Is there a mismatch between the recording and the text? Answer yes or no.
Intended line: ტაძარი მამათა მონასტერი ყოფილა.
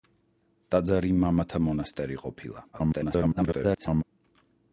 yes